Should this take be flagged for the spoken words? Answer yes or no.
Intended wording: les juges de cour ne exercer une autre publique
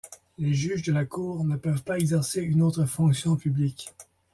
yes